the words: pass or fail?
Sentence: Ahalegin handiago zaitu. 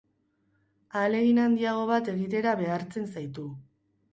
fail